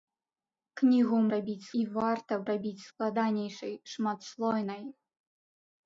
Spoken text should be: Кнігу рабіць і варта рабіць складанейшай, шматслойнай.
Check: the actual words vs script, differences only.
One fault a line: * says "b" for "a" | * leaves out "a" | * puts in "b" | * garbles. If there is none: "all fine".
all fine